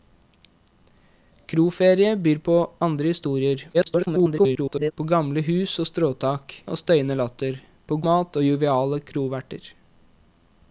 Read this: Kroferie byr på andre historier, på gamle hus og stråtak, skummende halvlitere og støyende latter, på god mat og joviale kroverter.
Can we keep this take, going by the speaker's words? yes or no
no